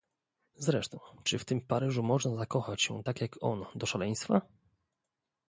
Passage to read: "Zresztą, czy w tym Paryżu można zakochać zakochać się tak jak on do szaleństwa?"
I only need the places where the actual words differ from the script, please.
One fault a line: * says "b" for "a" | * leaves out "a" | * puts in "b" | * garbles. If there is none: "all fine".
* leaves out "zakochać"